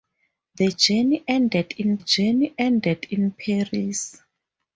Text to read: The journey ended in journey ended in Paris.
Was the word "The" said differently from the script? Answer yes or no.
no